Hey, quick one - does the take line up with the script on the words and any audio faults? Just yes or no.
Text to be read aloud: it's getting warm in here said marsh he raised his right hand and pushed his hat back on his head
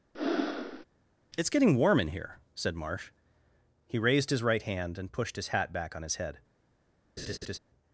no